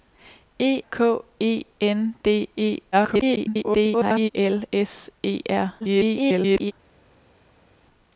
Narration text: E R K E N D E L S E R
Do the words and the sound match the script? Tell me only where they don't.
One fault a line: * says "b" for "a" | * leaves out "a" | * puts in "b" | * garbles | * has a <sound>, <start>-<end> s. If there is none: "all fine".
* leaves out "R"
* garbles
* garbles